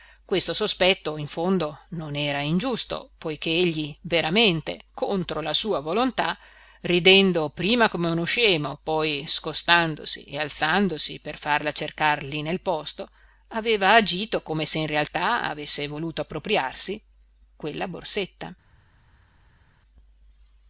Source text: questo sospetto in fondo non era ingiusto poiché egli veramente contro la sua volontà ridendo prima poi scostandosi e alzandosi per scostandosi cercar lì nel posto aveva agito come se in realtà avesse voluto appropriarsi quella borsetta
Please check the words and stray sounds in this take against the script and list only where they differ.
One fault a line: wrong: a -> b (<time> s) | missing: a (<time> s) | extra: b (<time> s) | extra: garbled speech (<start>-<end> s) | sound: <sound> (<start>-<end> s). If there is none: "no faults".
extra: come uno scemo (7.9 s)
wrong: scostandosi -> farla (11.4 s)